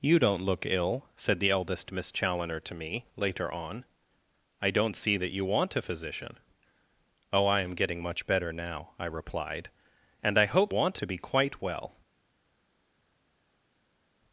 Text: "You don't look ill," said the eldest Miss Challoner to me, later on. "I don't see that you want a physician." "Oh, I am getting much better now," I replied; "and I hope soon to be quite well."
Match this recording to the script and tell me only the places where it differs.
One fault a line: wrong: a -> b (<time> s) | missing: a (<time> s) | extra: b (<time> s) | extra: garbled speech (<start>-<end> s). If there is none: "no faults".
wrong: soon -> want (10.7 s)